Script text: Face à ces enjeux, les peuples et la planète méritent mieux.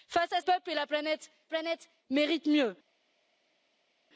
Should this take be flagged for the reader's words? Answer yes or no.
yes